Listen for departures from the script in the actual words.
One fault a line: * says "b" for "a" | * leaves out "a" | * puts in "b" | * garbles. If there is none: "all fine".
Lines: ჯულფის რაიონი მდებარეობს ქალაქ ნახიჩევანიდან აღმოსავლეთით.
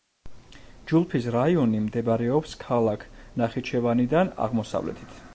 all fine